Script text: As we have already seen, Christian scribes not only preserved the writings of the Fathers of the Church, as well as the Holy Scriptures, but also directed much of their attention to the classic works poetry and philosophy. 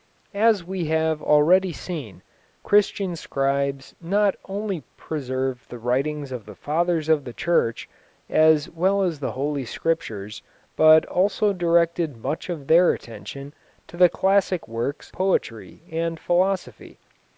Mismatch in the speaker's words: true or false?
false